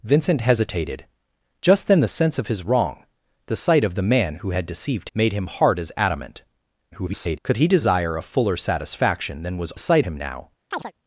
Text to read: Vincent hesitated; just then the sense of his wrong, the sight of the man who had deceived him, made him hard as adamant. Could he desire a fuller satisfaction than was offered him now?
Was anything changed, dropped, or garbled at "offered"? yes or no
yes